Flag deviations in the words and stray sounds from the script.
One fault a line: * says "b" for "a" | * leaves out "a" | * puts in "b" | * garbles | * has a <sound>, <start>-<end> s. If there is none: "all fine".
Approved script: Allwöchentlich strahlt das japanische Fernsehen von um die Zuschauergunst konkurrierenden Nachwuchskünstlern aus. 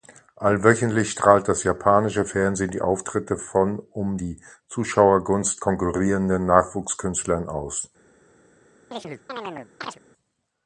* puts in "die Auftritte"
* has a chirp, 8.9-10.0 s